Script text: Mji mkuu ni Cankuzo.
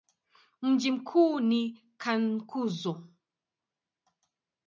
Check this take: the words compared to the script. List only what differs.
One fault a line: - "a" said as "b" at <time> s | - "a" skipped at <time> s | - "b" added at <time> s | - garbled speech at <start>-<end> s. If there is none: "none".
none